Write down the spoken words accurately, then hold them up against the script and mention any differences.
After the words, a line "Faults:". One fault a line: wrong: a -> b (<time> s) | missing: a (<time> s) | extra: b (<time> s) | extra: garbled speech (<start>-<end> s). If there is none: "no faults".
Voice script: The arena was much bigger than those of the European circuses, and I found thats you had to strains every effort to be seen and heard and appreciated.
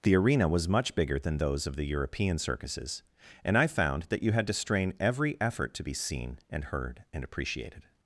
The arena was much bigger than those of the European circuses, and I found that you had to strain every effort to be seen and heard and appreciated.
Faults:
wrong: thats -> that (4.0 s)
wrong: strains -> strain (4.5 s)